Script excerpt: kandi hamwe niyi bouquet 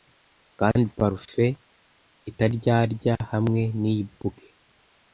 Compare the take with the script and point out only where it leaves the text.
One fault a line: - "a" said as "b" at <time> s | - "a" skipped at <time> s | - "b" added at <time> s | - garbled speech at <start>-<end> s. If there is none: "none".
- "parufe itaryarya" added at 1.0 s